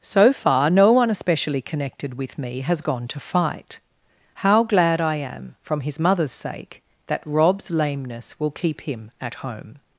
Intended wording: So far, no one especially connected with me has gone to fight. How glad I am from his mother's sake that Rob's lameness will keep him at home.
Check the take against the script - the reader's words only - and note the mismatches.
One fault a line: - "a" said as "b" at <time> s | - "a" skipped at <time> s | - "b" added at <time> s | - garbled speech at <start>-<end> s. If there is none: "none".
none